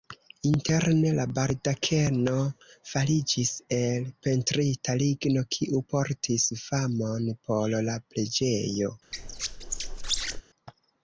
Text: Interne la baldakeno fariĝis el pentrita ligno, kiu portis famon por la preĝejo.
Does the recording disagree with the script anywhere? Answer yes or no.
no